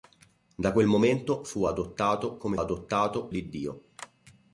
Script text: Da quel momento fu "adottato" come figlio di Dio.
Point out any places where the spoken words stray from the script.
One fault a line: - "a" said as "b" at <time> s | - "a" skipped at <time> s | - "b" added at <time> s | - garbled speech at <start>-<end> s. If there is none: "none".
- "figlio" said as "adottato" at 2.6 s